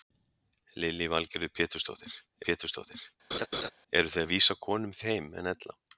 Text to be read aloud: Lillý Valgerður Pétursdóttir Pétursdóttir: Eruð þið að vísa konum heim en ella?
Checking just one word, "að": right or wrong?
right